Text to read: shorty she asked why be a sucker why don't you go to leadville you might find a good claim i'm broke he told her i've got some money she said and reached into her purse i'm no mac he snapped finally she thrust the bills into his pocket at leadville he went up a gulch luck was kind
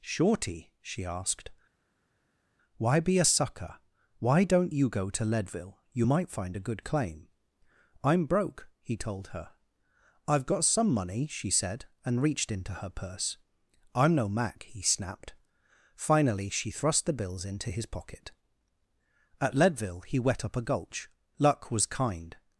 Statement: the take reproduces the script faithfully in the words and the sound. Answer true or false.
false